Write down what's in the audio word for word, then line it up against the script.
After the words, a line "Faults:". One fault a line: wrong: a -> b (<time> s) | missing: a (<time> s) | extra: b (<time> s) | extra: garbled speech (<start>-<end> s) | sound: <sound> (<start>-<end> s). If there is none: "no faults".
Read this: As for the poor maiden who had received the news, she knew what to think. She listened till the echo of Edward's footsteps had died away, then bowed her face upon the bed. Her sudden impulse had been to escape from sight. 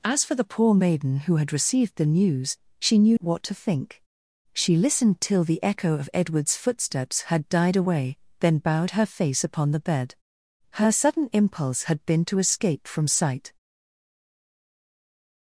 As for the poor maiden who had received the news, she knew what to think. She listened till the echo of Edward's footsteps had died away, then bowed her face upon the bed. Her sudden impulse had been to escape from sight.
Faults:
no faults